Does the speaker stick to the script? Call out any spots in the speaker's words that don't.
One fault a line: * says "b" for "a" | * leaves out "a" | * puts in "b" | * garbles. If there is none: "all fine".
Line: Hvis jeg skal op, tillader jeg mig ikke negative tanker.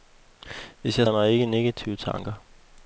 * leaves out "skal op tillader"